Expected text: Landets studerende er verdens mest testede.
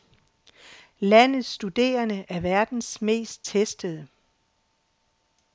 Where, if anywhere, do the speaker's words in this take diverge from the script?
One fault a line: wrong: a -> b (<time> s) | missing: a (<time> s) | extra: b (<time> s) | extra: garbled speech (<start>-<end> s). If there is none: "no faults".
no faults